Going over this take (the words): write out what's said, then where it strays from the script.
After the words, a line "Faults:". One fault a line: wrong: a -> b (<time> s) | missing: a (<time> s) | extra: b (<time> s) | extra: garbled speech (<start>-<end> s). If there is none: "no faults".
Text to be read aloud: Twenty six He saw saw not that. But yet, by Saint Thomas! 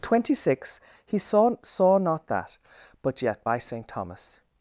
Twenty six He saw saw not that. But yet, by Saint Thomas!
Faults:
no faults